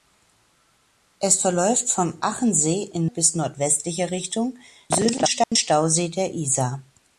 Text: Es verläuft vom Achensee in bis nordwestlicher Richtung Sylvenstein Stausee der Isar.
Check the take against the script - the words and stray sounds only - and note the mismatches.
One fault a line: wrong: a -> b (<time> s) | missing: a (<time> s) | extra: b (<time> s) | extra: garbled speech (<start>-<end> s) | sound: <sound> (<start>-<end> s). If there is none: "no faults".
sound: dropout (5.4-5.5 s)